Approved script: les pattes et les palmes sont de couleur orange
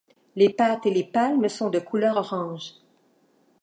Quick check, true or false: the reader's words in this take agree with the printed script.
true